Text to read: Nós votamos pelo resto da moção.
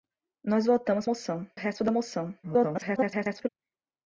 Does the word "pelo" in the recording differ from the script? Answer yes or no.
yes